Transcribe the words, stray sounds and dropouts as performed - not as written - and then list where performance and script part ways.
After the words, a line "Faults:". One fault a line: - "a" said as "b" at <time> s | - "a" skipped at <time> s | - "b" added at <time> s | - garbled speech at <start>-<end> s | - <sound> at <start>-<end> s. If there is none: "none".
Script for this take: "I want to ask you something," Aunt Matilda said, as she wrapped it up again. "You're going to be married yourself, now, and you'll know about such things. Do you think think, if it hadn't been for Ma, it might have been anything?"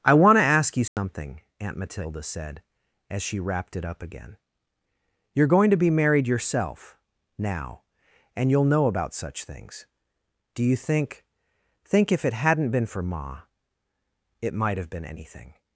"I want to ask you something," Aunt Matilda said, as she wrapped it up again. "You're going to be married yourself, now, and you'll know about such things. Do you think think, if it hadn't been for Ma, it might have been anything?"
Faults:
- dropout at 0.9-1.0 s